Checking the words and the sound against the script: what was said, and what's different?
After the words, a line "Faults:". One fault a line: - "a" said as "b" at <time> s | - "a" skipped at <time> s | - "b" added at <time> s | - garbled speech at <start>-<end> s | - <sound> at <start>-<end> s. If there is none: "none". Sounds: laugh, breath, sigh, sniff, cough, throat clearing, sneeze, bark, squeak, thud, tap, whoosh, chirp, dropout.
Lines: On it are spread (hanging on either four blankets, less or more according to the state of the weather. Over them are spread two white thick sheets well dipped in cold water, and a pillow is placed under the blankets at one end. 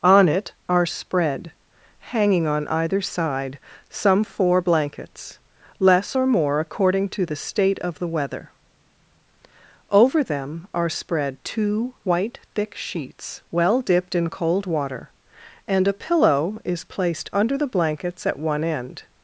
On it are spread (hanging on either side) some four blankets, less or more according to the state of the weather. Over them are spread two white thick sheets well dipped in cold water, and a pillow is placed under the blankets at one end.
Faults:
- "side some" added at 3.0 s